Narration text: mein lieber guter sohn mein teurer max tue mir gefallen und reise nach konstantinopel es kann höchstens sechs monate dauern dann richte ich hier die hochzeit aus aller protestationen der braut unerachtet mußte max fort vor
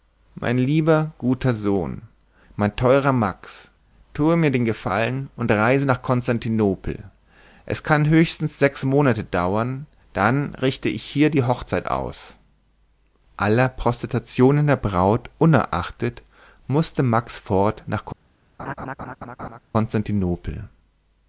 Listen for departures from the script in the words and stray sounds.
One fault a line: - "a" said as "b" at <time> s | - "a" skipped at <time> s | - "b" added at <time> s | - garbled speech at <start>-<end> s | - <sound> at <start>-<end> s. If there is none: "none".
- "den" added at 4.5 s
- "vor" said as "nach" at 17.9 s
- laugh at 18.6-19.6 s